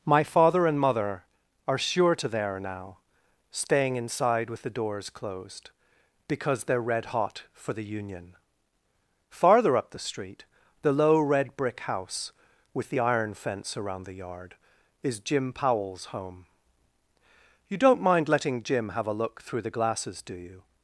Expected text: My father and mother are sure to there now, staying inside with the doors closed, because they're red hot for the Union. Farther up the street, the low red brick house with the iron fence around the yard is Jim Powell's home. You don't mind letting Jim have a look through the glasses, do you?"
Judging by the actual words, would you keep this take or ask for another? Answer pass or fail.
pass